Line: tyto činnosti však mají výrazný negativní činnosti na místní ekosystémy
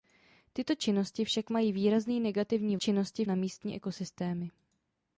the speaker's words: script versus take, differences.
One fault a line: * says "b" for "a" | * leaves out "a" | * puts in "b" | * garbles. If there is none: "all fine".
all fine